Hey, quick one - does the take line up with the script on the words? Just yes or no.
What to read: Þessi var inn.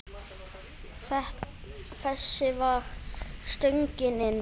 no